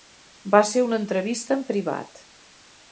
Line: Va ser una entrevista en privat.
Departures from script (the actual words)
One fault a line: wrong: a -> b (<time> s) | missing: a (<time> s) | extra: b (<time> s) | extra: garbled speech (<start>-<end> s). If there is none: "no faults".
no faults